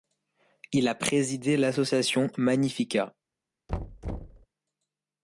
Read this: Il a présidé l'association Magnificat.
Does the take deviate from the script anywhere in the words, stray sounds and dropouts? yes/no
yes